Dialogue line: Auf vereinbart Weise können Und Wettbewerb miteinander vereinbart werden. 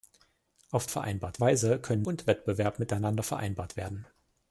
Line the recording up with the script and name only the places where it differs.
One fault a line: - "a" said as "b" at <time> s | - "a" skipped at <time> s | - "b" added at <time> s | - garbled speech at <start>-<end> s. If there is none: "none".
none